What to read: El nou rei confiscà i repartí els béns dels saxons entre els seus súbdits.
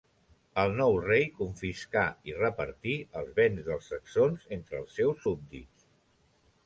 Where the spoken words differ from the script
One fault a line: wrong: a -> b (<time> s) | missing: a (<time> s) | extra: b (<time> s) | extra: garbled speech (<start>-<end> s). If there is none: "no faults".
no faults